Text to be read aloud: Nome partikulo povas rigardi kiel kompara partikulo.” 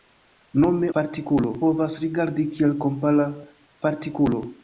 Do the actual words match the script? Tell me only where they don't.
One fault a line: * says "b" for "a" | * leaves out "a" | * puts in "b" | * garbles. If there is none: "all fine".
all fine